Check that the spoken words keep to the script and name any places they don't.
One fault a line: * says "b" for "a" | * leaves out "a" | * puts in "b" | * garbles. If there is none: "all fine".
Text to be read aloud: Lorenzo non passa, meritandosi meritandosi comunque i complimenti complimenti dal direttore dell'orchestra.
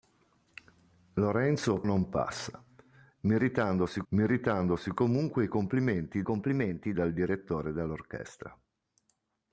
all fine